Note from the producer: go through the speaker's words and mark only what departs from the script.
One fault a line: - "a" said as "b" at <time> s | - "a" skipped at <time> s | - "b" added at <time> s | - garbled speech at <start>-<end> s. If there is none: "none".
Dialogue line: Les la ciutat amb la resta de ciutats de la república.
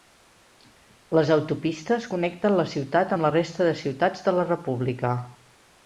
- "autopistes connecten" added at 1.4 s